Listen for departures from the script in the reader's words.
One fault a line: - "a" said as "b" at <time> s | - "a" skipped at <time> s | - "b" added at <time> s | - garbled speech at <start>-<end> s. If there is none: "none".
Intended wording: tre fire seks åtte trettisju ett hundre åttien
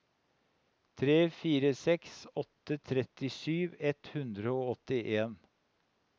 - "og" added at 4.6 s